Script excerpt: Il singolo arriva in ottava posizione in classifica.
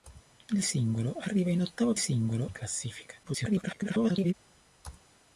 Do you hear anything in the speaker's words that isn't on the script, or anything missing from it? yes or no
yes